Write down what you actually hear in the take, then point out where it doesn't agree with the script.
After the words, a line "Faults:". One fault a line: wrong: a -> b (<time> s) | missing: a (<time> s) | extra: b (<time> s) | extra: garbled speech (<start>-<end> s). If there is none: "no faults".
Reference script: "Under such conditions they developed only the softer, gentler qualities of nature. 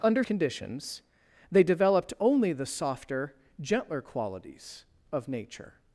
"Under conditions they developed only the softer, gentler qualities of nature.
Faults:
missing: such (0.2 s)